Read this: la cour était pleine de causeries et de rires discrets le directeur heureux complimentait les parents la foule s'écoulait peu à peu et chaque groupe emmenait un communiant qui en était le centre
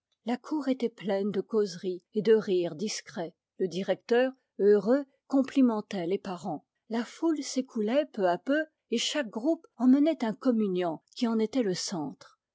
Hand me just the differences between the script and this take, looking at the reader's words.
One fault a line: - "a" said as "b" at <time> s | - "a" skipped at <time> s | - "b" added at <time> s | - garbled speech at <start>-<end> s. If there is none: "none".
none